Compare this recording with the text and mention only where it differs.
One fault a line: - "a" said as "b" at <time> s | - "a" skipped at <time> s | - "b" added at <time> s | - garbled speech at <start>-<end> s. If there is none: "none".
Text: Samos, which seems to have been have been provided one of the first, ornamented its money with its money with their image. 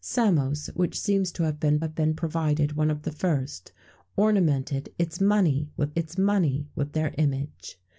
none